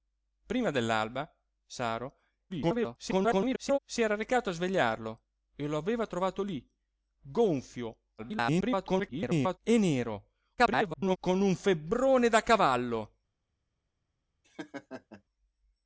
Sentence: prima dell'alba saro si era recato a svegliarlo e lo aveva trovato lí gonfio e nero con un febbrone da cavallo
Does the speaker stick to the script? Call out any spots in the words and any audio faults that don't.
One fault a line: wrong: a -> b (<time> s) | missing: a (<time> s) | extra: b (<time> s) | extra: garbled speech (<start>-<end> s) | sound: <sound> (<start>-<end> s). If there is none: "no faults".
extra: garbled speech (2.5-3.8 s)
extra: garbled speech (8.2-9.6 s)
extra: garbled speech (10.6-11.2 s)
sound: laugh (14.4-15.2 s)